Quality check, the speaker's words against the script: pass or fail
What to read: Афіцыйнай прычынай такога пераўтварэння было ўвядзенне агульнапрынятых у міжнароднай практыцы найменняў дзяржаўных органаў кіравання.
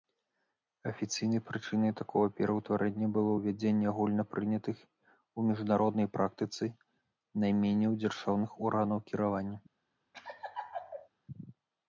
pass